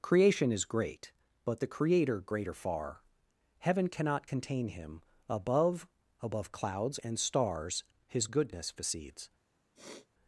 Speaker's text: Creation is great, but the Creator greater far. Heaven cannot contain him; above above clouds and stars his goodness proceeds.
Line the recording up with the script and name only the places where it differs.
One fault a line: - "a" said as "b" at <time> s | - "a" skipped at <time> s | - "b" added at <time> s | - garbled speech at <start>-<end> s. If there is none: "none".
none